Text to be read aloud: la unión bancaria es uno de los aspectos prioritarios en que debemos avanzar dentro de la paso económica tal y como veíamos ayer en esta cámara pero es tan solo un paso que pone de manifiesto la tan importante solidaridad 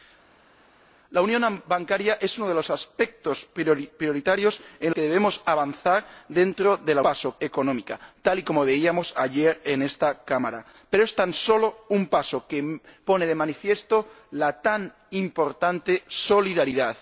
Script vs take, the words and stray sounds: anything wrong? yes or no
no